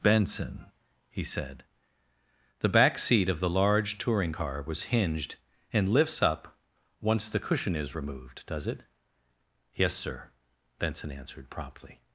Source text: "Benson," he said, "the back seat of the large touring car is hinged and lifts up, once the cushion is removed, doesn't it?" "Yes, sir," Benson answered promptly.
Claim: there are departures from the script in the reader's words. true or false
true